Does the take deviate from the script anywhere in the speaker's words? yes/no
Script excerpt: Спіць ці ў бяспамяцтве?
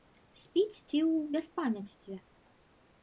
no